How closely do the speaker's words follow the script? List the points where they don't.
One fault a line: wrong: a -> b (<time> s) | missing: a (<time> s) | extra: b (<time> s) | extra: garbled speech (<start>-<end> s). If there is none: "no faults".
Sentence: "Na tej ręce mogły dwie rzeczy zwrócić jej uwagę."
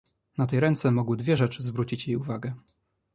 no faults